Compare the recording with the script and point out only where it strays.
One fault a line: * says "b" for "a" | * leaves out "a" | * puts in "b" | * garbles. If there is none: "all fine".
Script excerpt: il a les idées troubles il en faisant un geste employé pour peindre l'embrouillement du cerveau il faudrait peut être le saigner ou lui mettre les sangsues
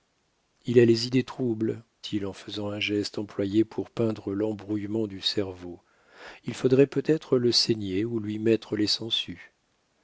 all fine